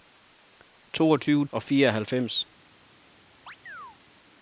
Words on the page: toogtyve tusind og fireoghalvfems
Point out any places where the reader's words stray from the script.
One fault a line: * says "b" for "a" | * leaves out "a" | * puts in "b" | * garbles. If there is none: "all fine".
* leaves out "tusind"